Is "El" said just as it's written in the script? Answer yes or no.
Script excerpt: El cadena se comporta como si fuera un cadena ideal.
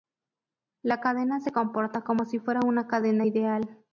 no